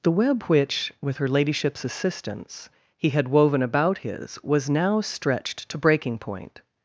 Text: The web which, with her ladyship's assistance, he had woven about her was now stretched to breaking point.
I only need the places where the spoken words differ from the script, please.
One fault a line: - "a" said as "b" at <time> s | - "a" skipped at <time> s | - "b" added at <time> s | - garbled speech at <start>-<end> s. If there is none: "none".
- "her" said as "his" at 4.0 s